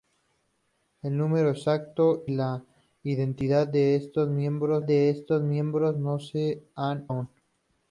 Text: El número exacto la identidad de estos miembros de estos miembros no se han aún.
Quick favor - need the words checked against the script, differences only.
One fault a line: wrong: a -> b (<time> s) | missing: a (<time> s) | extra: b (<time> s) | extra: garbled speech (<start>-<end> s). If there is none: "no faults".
no faults